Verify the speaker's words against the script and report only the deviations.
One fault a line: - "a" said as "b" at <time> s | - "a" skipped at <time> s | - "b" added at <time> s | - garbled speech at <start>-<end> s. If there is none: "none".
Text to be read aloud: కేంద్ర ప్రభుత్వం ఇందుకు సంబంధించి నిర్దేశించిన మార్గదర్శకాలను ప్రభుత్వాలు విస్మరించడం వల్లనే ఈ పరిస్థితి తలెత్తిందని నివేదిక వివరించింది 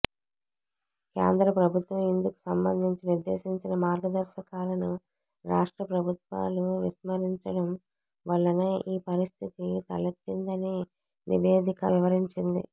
- "రాష్ట్ర" added at 5.5 s